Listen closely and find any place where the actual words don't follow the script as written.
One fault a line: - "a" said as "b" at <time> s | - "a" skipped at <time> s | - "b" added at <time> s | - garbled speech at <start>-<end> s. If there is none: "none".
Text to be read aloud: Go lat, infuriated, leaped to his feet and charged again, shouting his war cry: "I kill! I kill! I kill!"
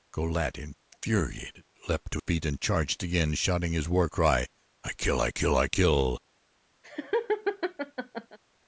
- "his" skipped at 2.2 s